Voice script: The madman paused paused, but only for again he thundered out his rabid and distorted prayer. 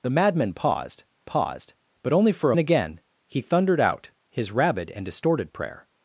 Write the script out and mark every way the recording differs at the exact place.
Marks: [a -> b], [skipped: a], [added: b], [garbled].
The madman paused paused, but only for again he thundered out his rabid and distorted prayer.